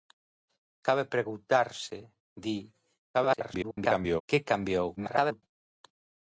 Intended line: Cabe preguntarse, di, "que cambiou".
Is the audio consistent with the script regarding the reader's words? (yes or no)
no